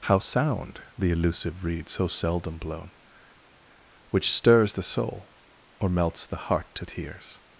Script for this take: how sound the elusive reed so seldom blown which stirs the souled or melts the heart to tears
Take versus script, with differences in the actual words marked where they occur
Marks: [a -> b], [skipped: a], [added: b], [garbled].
how sound the elusive reed so seldom blown which stirs the [souled -> soul] or melts the heart to tears